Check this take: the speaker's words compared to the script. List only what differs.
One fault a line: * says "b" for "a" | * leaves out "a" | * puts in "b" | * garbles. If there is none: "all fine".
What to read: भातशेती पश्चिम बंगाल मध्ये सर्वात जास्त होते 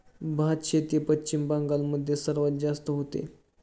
all fine